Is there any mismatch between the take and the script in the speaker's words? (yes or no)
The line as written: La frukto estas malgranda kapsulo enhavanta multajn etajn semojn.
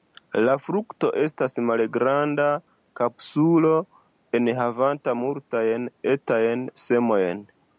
no